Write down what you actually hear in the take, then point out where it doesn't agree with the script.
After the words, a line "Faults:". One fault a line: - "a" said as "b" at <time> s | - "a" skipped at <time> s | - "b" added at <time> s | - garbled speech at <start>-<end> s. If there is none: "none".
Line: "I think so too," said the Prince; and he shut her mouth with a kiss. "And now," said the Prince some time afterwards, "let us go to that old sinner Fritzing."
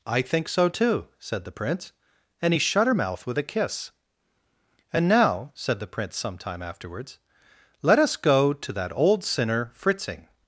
"I think so too," said the Prince; and he shut her mouth with a kiss. "And now," said the Prince some time afterwards, "let us go to that old sinner Fritzing."
Faults:
none